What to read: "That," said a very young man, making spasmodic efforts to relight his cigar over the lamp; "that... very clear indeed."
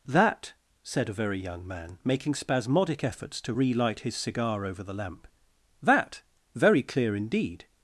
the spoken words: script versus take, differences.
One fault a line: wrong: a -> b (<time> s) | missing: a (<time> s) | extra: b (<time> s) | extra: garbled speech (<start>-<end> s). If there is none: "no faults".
no faults